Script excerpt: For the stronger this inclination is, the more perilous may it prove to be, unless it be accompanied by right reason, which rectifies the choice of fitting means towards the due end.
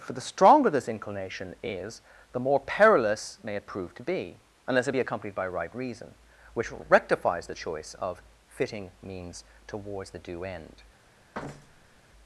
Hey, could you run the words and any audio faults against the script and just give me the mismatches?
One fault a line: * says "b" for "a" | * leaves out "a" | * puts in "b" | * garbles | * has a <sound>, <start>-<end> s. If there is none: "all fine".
* has a thud, 11.3-12.0 s